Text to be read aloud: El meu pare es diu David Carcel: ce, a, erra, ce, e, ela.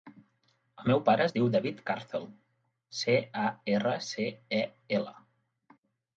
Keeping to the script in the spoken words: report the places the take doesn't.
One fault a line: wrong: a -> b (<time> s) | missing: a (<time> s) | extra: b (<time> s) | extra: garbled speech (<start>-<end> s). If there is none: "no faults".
no faults